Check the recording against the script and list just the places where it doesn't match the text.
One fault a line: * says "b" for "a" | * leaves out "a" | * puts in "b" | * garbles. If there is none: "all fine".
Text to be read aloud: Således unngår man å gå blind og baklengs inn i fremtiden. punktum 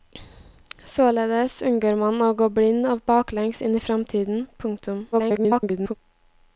* garbles